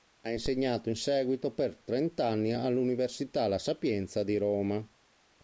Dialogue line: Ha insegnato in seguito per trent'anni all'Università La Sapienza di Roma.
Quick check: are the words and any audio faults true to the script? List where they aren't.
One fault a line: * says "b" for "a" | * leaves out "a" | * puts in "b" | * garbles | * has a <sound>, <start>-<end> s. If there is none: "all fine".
all fine